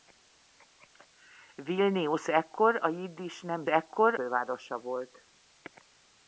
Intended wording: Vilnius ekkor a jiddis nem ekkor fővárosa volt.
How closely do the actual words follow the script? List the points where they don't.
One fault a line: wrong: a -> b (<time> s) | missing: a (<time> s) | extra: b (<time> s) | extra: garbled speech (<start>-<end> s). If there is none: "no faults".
no faults